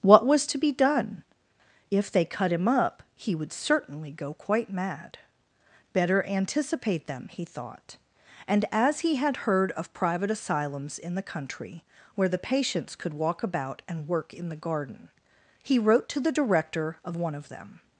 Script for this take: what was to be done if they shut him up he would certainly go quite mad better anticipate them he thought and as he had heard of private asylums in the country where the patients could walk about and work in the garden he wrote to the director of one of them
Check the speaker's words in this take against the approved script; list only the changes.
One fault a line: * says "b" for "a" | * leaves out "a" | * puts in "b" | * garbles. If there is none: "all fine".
* says "cut" for "shut"